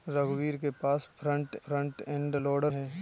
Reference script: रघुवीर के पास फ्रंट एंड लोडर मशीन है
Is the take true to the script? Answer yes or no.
no